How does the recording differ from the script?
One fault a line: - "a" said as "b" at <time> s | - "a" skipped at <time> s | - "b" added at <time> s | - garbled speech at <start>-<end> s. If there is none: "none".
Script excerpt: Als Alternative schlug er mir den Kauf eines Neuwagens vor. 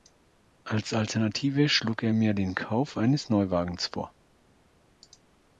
none